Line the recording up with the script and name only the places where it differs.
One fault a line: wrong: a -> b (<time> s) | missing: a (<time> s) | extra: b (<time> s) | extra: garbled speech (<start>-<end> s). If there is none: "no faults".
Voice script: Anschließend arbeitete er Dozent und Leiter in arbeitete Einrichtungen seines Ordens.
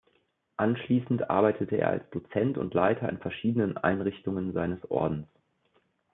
extra: als (1.9 s)
wrong: arbeitete -> verschiedenen (3.2 s)